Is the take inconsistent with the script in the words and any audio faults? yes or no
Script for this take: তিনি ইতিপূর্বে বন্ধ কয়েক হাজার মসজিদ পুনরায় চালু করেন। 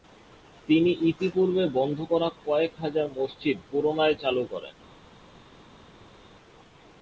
yes